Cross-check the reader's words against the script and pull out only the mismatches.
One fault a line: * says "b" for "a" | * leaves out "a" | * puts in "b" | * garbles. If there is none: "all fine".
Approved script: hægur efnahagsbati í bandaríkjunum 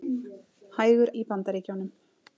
* leaves out "efnahagsbati"